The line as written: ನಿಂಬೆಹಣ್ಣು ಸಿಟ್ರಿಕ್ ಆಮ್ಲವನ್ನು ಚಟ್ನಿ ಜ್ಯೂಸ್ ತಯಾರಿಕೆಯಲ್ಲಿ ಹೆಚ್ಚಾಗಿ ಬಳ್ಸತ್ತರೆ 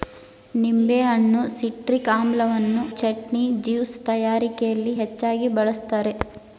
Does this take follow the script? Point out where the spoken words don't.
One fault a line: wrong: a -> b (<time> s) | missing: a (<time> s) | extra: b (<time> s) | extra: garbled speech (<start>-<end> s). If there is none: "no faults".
no faults